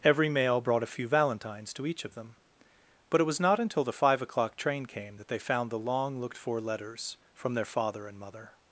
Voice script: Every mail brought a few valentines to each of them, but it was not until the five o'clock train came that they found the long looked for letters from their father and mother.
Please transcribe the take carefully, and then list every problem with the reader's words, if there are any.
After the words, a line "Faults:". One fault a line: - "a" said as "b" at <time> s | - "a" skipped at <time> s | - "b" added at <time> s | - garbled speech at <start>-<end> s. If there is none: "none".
Every mail brought a few valentines to each of them, but it was not until the five o'clock train came that they found the long looked for letters from their father and mother.
Faults:
none